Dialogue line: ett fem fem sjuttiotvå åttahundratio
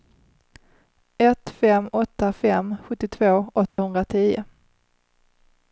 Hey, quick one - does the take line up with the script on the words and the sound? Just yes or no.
no